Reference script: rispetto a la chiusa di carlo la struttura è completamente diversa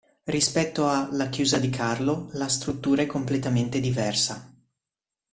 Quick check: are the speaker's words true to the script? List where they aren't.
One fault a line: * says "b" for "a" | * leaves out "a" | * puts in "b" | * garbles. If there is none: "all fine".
all fine